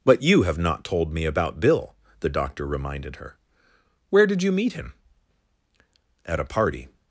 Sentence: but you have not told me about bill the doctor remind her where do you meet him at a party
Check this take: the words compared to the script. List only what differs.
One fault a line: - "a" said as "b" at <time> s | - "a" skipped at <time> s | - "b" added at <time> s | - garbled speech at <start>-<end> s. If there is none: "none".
- "remind" said as "reminded" at 2.6 s
- "do" said as "did" at 4.2 s